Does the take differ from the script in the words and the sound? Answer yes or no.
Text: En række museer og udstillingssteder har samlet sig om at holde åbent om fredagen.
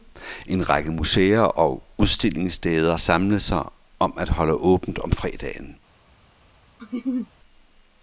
yes